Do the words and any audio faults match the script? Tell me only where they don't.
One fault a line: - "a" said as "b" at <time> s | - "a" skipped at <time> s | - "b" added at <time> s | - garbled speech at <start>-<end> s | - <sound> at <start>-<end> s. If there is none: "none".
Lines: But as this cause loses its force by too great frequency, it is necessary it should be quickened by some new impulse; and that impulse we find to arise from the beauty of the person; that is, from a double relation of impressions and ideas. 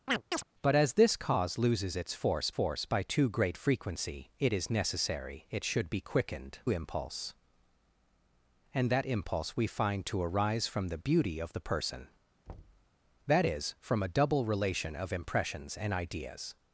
- chirp at 0.1-0.4 s
- "force" added at 2.5 s
- "by some new" skipped at 6.6 s
- thud at 12.5-12.9 s